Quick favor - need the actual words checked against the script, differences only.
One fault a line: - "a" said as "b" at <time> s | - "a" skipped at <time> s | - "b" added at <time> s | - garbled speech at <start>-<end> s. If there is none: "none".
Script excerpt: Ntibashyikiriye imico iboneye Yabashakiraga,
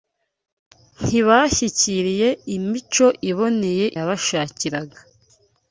none